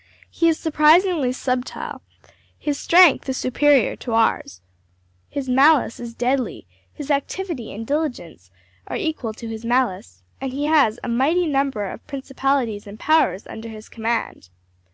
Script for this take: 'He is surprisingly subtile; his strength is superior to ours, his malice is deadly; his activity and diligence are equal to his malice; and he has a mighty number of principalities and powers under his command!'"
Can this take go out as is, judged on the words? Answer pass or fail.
pass